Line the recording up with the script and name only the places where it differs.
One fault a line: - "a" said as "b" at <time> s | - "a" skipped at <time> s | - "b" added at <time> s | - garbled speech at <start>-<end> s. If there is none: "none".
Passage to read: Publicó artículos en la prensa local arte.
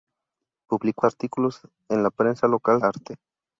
none